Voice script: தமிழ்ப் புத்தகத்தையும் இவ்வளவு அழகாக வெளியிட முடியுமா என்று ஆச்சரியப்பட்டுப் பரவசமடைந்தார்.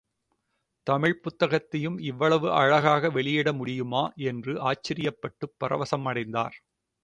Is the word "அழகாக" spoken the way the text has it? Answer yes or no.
yes